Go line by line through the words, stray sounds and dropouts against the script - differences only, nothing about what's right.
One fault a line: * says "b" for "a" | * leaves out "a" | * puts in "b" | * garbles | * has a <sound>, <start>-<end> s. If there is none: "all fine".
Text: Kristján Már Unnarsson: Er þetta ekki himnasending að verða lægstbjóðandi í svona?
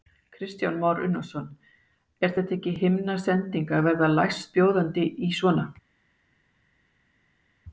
all fine